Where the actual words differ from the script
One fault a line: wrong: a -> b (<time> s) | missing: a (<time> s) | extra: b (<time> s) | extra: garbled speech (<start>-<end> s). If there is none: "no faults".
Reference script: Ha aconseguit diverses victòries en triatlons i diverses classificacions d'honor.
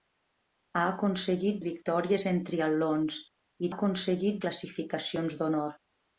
missing: diverses (1.6 s)
wrong: diverses -> aconseguit (3.7 s)